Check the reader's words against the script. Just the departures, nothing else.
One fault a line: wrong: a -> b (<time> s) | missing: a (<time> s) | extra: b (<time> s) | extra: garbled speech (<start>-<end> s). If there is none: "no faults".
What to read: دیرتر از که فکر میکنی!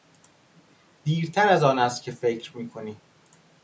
extra: آن است (1.6 s)